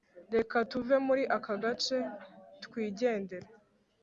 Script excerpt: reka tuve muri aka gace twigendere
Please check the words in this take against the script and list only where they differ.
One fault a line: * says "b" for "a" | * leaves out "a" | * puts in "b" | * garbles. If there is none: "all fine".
all fine